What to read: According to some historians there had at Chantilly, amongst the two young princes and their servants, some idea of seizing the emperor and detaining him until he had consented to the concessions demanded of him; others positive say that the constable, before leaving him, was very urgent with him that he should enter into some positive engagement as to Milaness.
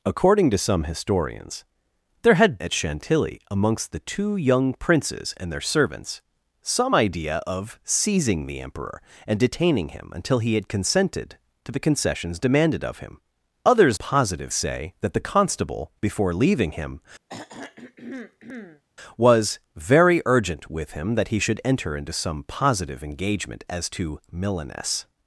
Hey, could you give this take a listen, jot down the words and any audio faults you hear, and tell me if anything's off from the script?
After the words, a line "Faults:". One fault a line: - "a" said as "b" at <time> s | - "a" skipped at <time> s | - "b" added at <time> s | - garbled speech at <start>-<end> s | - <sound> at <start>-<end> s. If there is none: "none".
According to some historians there had at Chantilly, amongst the two young princes and their servants, some idea of seizing the emperor and detaining him until he had consented to the concessions demanded of him; others positive say that the constable, before leaving him, was very urgent with him that he should enter into some positive engagement as to Milaness.
Faults:
- throat clearing at 17.3-18.8 s